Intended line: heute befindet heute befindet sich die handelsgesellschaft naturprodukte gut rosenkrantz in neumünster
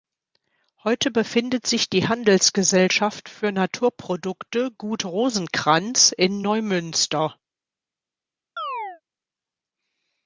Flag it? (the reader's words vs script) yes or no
yes